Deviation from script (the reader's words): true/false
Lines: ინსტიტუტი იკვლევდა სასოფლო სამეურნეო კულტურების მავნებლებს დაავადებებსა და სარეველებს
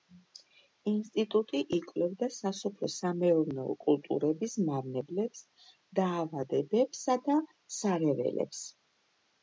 false